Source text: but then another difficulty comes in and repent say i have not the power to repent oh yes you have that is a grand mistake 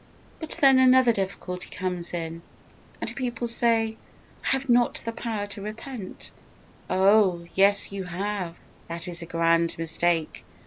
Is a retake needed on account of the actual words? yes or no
yes